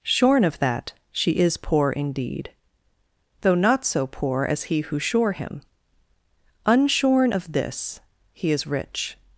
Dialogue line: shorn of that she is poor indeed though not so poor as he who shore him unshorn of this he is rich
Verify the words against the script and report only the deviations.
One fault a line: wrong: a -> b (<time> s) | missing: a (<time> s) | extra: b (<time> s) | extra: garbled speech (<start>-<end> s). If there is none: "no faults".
no faults